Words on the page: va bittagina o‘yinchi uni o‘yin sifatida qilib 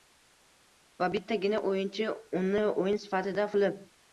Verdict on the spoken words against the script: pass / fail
pass